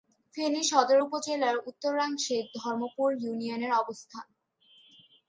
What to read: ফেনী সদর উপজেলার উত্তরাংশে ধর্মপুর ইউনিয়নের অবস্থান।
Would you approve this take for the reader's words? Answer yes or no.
yes